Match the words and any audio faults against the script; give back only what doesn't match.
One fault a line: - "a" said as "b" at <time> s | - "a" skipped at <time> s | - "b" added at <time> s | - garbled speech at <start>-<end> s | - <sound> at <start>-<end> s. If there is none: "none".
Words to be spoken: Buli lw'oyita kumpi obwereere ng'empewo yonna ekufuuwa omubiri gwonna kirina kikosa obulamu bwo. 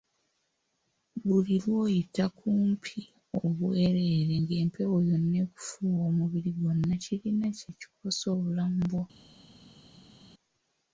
- "kye" added at 7.6 s